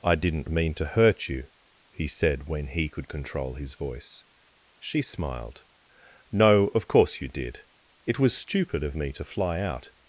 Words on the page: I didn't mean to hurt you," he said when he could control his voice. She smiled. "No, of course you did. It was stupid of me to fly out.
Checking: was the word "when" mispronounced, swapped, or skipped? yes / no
no